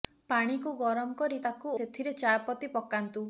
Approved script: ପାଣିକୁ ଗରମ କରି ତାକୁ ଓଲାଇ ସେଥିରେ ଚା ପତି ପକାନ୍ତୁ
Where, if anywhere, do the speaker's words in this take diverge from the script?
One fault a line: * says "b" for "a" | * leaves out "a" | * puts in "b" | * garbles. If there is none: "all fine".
* leaves out "ଓଲାଇ"